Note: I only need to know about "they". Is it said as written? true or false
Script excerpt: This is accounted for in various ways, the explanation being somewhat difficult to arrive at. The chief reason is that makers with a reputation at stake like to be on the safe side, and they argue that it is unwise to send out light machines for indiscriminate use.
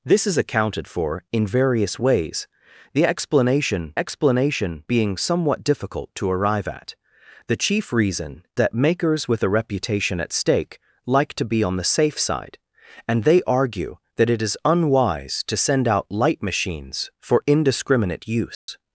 true